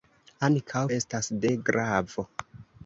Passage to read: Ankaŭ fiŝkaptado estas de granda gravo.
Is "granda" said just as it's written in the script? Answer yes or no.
no